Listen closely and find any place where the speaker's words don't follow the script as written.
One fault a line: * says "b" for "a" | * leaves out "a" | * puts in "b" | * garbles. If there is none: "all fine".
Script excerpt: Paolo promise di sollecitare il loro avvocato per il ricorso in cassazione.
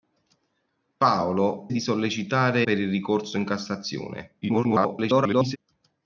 * leaves out "promise"
* leaves out "il loro avvocato"
* garbles